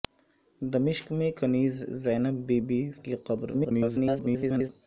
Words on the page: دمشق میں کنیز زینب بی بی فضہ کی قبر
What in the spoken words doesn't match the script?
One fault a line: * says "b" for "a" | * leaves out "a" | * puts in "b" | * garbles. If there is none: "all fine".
* leaves out "فضہ"
* garbles